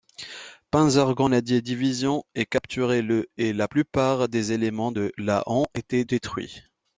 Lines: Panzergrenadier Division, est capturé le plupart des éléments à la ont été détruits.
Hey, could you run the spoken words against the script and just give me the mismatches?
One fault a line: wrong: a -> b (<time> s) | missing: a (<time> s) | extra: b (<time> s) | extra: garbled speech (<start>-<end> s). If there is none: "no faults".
extra: et la (3.4 s)
wrong: à -> de (4.9 s)